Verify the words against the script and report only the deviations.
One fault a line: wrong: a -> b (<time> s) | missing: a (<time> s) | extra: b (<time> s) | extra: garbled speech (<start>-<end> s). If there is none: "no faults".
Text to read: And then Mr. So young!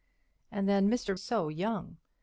no faults